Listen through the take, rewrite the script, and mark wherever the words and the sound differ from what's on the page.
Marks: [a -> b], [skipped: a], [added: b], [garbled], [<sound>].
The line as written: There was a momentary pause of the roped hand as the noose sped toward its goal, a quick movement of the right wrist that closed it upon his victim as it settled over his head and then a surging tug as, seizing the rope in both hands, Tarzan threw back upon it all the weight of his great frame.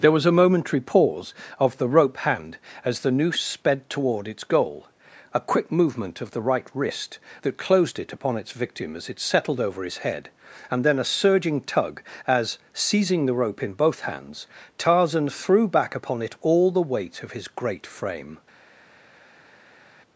There was a momentary pause of the [roped -> rope] hand as the noose sped toward its goal, a quick movement of the right wrist that closed it upon [his -> its] victim as it settled over his head and then a surging tug as, seizing the rope in both hands, Tarzan threw back upon it all the weight of his great frame.